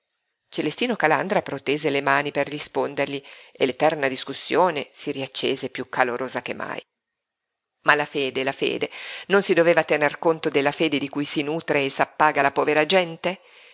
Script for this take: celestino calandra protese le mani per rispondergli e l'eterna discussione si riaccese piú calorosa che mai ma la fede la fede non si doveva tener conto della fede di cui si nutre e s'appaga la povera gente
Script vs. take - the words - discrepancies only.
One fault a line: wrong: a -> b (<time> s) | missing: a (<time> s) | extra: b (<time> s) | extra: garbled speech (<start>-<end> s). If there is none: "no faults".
no faults